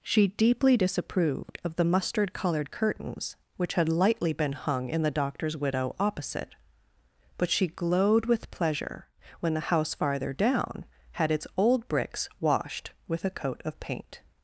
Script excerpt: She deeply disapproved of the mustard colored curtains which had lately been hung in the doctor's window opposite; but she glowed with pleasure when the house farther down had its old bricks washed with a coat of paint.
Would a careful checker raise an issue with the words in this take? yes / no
yes